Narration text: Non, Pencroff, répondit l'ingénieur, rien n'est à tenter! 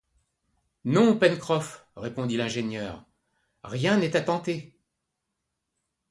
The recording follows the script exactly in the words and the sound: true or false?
true